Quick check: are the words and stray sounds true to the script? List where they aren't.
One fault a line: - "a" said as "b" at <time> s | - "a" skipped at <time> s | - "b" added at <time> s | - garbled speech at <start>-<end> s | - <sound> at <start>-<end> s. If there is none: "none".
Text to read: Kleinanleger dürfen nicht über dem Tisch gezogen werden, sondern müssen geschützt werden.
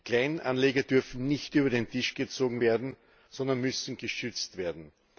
- "dem" said as "den" at 1.7 s